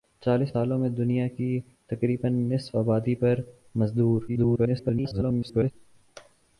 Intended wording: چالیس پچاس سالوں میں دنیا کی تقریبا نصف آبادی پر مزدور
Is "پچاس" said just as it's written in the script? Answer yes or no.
no